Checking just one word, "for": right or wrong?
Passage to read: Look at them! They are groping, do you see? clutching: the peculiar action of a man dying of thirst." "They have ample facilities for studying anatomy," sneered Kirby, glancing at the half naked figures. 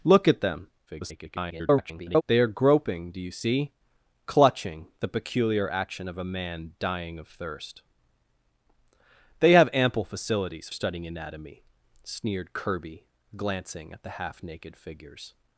wrong